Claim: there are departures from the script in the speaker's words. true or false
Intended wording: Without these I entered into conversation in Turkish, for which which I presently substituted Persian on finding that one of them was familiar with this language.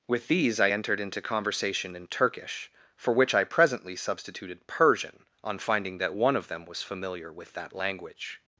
true